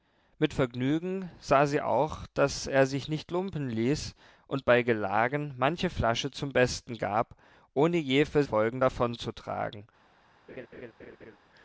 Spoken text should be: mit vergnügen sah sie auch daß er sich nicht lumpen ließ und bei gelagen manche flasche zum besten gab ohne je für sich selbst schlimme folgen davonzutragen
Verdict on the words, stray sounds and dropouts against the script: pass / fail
fail